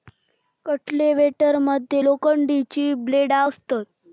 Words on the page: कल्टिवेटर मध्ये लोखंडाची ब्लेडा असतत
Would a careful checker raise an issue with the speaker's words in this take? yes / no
no